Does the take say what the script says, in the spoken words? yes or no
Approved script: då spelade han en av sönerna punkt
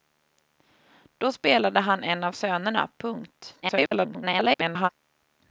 no